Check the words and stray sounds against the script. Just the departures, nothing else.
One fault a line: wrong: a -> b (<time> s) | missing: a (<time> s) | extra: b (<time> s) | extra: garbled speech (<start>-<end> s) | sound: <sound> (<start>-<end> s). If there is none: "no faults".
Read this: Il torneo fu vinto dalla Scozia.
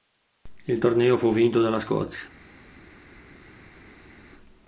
no faults